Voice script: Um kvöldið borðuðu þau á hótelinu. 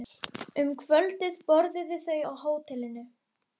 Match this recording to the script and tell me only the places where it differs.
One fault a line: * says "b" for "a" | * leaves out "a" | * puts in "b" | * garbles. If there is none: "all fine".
all fine